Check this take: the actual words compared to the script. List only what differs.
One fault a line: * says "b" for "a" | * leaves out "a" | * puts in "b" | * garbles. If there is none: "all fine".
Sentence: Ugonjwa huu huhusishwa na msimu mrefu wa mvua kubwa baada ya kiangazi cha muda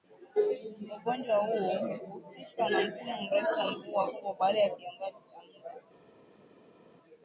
all fine